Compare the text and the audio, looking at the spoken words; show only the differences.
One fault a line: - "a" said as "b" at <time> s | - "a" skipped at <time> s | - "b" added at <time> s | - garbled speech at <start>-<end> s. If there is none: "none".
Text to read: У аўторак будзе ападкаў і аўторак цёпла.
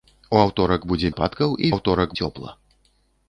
none